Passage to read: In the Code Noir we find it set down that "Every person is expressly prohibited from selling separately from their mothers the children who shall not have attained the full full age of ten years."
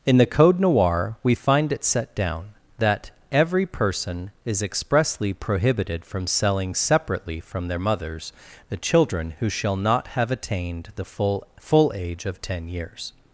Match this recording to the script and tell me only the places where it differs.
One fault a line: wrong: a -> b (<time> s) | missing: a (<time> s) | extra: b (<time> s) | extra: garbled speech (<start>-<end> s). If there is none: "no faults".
no faults